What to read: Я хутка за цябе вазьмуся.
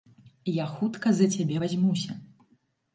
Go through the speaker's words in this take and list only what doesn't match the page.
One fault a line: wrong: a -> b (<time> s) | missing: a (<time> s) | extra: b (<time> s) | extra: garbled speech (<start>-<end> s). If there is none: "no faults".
no faults